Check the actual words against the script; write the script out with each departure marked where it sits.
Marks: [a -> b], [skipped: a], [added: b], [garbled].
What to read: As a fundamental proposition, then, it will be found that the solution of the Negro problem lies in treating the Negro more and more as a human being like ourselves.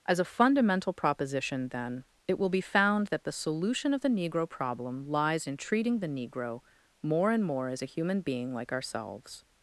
As a fundamental proposition, then, it will be found that the solution of the Negro problem lies in treating the Negro more and more as a human being like ourselves.